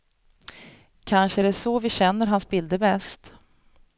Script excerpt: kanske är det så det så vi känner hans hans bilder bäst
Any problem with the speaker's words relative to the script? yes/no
yes